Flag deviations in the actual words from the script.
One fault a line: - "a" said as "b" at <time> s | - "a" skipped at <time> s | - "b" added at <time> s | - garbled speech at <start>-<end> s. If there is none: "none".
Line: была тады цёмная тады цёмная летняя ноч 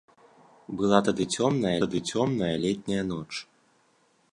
none